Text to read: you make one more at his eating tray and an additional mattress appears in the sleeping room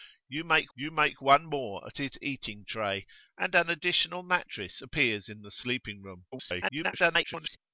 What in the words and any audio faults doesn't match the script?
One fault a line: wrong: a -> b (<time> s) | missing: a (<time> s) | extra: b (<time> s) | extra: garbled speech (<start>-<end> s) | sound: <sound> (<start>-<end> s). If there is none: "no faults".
extra: you make (0.7 s)
extra: garbled speech (6.3-7.6 s)